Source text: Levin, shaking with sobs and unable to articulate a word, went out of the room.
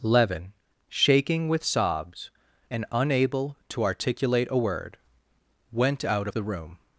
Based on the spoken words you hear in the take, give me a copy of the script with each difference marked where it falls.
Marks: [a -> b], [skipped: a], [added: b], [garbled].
Levin, shaking with sobs and unable to articulate a word, went out of the room.